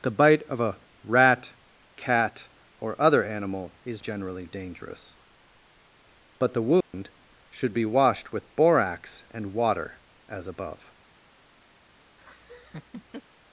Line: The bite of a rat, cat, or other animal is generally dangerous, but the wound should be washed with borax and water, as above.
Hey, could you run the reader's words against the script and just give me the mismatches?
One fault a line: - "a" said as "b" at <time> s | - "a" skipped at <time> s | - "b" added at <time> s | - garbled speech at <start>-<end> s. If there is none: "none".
none